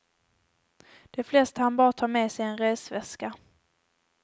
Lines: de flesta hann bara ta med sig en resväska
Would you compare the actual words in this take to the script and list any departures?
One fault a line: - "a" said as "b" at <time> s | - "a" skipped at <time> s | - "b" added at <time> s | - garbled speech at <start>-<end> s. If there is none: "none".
none